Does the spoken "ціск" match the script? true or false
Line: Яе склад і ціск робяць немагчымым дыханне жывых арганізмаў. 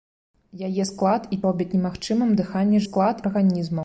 false